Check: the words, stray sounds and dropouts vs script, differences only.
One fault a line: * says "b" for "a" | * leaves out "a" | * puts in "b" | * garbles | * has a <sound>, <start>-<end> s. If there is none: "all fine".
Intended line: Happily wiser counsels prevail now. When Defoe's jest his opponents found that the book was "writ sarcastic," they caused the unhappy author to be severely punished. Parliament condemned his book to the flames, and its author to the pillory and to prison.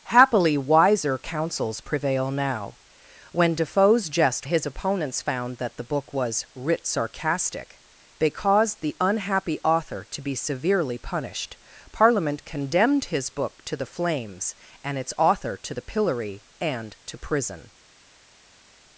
all fine